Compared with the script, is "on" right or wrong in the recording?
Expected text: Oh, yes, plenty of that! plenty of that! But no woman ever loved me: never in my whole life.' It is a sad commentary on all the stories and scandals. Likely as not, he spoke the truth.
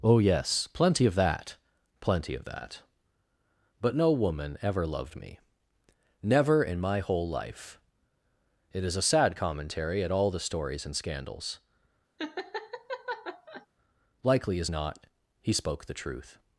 wrong